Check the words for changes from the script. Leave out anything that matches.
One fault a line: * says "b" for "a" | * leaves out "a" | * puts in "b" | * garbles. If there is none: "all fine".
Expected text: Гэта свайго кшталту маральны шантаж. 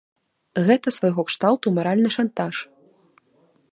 all fine